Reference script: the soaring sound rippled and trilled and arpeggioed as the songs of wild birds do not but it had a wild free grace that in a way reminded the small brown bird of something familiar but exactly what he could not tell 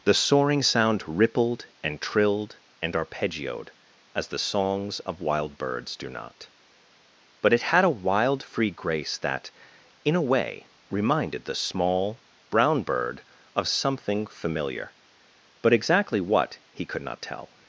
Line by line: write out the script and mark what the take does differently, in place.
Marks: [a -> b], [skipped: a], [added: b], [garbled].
the soaring sound rippled and trilled and arpeggioed as the songs of wild birds do not but it had a wild free grace that in a way reminded the small brown bird of something familiar but exactly what he could not tell